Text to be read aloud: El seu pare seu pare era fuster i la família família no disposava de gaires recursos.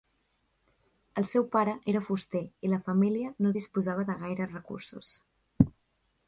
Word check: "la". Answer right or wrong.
right